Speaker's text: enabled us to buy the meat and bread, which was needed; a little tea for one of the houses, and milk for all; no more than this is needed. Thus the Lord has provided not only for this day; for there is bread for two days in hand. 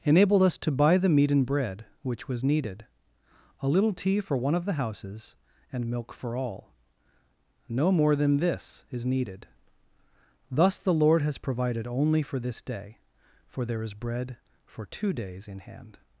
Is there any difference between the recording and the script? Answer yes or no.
yes